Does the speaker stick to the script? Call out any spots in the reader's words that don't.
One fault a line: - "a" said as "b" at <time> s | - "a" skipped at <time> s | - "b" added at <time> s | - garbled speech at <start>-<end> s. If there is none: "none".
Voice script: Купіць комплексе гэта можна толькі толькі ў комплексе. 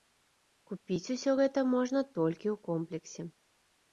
- "комплексе" said as "усё" at 1.1 s
- "толькі" skipped at 2.5 s